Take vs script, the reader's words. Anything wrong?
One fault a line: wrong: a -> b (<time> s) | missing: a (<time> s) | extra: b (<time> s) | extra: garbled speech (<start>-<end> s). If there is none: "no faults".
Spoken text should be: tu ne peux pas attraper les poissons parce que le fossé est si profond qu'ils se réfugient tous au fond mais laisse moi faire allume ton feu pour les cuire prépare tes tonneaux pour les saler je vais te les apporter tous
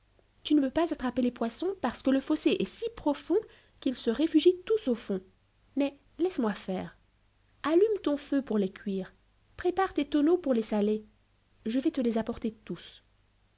no faults